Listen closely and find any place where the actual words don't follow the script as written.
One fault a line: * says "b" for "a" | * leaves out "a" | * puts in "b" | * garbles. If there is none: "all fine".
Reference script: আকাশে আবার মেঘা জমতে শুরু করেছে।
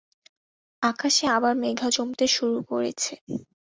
all fine